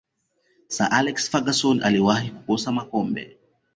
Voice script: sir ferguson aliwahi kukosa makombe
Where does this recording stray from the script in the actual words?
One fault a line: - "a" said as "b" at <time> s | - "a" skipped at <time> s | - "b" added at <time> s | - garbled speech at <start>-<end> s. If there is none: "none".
- "alex" added at 0.9 s